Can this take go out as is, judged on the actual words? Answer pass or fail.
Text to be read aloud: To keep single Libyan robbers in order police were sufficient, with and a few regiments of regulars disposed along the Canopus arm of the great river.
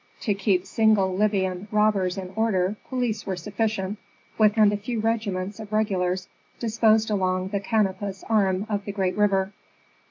pass